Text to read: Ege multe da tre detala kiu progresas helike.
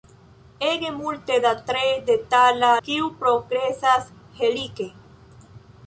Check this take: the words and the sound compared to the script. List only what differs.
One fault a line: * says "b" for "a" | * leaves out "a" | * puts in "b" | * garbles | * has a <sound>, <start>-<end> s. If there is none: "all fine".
all fine